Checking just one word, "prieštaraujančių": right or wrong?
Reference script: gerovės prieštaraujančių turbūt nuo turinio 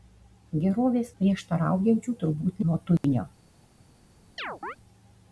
right